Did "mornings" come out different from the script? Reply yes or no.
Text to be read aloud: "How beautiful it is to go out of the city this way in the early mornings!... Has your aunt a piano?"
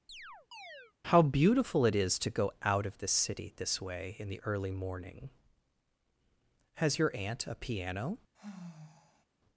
yes